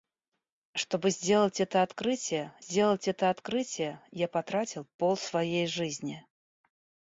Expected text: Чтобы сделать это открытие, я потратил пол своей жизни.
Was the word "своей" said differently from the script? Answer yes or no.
no